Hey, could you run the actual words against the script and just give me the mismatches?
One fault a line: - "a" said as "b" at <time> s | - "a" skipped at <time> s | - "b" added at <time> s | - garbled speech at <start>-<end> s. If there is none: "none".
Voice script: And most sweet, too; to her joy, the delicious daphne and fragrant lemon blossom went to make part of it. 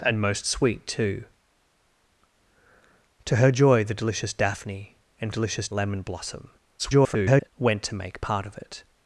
- "fragrant" said as "delicious" at 5.3 s
- garbled speech at 6.8-7.5 s